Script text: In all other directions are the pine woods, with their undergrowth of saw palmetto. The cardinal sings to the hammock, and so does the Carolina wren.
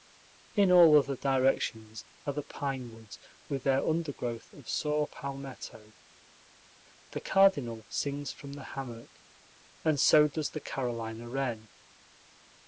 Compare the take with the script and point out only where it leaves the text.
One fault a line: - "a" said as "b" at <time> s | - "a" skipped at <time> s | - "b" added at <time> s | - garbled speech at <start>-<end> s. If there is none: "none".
- "to" said as "from" at 8.3 s